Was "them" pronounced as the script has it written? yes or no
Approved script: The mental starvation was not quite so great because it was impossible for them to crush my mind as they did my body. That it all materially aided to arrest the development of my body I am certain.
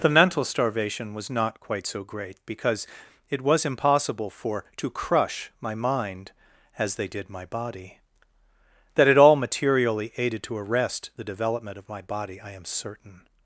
no